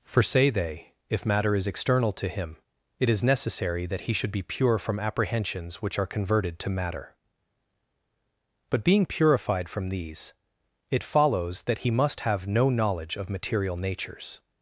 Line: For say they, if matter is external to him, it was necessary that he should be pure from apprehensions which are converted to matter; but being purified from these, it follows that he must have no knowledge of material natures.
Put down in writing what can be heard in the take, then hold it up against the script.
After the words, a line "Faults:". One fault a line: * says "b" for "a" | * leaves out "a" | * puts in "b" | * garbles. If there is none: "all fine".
For say they, if matter is external to him, it is necessary that he should be pure from apprehensions which are converted to matter; but being purified from these, it follows that he must have no knowledge of material natures.
Faults:
* says "is" for "was"